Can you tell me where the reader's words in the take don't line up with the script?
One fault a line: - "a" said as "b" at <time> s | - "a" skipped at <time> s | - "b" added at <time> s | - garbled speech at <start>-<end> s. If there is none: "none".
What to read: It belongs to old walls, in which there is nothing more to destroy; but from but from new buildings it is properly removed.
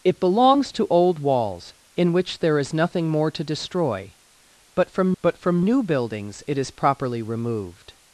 none